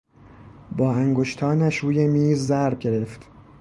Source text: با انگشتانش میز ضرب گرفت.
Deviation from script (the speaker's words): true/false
true